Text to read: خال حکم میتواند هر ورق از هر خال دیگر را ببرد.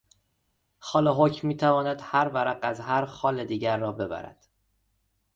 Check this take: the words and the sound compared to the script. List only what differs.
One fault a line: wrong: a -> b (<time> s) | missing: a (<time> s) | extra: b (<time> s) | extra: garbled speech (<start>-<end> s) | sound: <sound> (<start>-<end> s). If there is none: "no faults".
no faults